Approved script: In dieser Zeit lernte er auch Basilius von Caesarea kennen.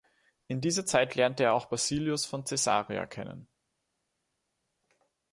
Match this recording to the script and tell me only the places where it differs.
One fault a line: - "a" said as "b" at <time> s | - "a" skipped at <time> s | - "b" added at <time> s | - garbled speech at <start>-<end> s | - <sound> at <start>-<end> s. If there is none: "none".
none